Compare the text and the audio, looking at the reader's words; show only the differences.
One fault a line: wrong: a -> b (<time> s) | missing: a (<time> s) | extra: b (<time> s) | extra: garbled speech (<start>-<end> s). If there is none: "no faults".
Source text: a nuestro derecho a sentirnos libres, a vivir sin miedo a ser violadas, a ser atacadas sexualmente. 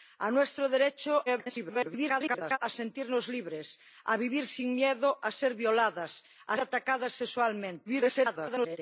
extra: garbled speech (1.3-2.6 s)
missing: ser (6.6 s)
extra: garbled speech (7.9-8.8 s)